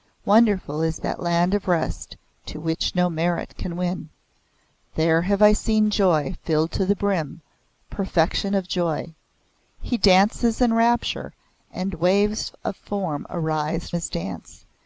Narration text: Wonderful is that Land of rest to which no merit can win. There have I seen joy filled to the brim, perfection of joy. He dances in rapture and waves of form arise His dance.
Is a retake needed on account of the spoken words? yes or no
no